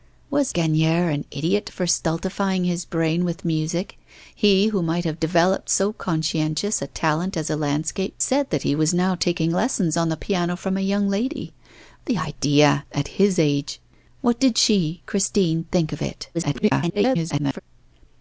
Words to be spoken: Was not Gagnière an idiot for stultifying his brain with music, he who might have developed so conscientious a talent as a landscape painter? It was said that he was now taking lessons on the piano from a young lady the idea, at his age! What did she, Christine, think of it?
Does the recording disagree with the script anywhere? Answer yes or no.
yes